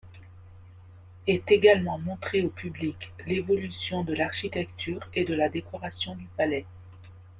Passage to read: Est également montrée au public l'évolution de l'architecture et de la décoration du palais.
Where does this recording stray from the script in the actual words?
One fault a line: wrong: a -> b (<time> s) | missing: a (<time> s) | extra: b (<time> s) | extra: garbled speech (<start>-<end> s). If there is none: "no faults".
no faults